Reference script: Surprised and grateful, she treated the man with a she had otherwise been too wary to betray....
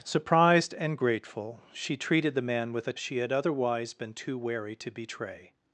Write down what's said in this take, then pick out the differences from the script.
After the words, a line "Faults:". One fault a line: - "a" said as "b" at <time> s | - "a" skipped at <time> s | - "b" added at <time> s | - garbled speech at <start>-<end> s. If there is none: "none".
Surprised and grateful, she treated the man with a she had otherwise been too wary to betray....
Faults:
none